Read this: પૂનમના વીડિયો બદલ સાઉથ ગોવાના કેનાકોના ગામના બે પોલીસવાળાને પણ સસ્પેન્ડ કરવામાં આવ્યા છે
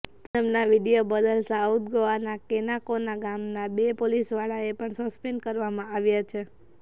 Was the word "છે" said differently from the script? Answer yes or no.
no